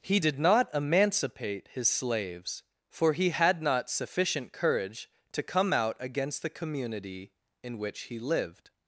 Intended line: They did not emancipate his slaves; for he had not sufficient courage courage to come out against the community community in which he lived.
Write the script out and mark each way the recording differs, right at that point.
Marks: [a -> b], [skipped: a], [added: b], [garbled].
[They -> He] did not emancipate his slaves; for he had not sufficient courage [skipped: courage] to come out against the community [skipped: community] in which he lived.